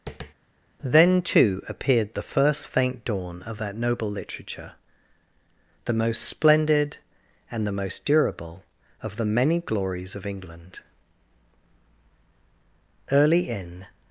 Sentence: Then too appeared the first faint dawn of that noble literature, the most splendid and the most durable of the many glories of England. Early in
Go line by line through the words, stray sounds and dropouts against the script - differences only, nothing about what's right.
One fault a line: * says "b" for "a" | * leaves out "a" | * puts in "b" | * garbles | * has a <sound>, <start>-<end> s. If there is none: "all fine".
* has a tap, 0.1-0.3 s